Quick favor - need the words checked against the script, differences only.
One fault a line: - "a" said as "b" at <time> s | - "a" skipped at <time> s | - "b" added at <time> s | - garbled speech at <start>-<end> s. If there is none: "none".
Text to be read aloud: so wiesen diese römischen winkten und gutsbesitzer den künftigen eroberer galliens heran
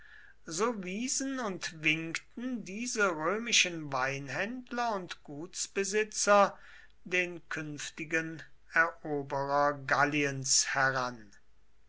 - "und winkten" added at 1.4 s
- "winkten" said as "weinhändler" at 3.9 s